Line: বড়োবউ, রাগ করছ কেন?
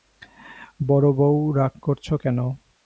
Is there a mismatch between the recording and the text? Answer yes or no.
no